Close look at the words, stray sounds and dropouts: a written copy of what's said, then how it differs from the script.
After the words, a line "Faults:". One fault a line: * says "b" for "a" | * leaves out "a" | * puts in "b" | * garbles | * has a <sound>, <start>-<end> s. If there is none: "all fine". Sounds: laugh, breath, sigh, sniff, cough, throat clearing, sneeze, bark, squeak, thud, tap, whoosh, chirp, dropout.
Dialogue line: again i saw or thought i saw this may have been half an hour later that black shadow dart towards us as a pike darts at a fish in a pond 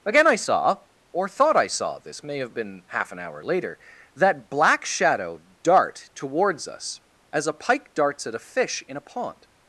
again i saw or thought i saw this may have been half an hour later that black shadow dart towards us as a pike darts at a fish in a pond
Faults:
all fine